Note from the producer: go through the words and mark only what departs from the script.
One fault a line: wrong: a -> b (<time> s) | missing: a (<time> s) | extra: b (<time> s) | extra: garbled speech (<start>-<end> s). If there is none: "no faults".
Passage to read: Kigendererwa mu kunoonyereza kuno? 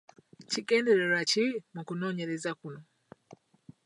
extra: ki (1.3 s)